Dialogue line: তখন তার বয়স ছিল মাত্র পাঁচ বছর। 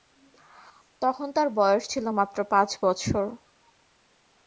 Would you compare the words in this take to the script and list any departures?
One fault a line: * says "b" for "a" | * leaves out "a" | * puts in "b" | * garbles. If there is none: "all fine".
all fine